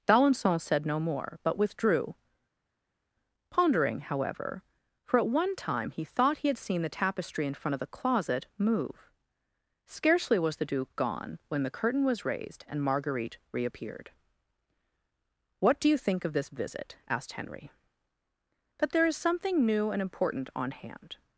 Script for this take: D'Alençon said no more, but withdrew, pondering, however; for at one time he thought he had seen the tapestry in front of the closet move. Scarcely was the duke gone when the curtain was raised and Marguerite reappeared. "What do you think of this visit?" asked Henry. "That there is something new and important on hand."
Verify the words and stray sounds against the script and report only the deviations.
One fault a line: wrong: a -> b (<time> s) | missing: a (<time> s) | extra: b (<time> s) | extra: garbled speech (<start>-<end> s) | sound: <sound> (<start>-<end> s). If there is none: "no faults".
no faults